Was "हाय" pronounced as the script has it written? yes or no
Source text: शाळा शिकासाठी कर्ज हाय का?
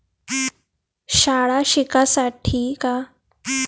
no